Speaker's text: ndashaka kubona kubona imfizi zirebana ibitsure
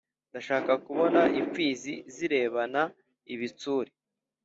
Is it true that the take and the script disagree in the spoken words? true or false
true